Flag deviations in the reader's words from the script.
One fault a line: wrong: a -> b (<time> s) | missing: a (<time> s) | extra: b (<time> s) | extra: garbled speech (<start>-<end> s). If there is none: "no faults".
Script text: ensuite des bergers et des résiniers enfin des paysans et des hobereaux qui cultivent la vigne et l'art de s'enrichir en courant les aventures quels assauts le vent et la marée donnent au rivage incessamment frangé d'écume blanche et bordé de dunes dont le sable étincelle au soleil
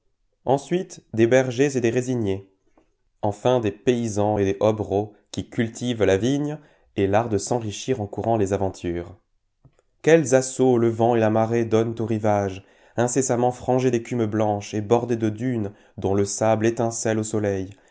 no faults